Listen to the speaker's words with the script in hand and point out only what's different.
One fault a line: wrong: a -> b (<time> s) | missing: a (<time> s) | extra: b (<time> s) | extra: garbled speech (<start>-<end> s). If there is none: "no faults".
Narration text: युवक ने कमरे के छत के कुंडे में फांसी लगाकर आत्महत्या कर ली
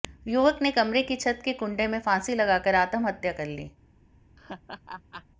wrong: के -> की (1.0 s)